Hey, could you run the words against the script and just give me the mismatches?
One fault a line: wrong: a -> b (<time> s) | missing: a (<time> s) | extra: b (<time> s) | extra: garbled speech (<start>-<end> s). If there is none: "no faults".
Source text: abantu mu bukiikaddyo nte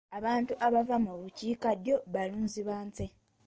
extra: abava (0.7 s)
extra: balunzi ba (2.1 s)